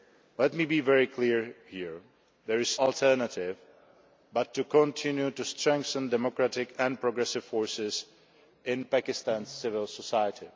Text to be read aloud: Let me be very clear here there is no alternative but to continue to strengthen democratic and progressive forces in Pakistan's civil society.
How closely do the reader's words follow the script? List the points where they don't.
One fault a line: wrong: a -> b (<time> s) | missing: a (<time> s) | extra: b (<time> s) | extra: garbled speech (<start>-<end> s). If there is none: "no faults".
missing: no (2.8 s)